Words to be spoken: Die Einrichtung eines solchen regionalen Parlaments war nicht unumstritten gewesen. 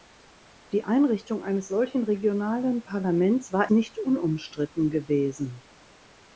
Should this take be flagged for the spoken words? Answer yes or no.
no